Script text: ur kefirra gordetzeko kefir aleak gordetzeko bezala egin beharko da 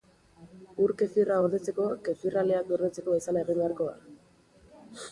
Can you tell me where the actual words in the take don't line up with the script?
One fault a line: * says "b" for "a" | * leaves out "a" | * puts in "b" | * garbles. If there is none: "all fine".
all fine